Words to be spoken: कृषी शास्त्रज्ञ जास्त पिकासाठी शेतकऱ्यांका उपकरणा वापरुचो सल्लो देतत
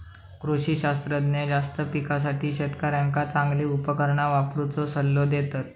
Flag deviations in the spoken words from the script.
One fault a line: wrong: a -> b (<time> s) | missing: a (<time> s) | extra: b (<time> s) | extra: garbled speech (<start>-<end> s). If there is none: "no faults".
extra: चांगली (3.2 s)